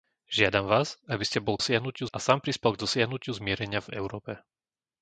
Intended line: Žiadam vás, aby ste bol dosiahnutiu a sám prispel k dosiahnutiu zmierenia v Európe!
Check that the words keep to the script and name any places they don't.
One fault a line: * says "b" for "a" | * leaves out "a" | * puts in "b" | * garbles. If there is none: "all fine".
all fine